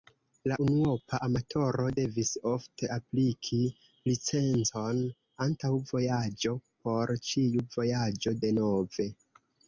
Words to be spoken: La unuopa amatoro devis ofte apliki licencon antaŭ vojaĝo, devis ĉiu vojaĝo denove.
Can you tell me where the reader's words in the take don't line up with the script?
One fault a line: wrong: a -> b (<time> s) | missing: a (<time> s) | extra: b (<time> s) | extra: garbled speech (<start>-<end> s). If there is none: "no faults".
wrong: devis -> por (6.9 s)